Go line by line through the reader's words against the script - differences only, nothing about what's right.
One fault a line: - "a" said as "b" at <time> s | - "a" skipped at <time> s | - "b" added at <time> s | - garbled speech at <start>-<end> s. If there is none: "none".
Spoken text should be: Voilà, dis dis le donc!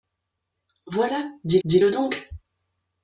none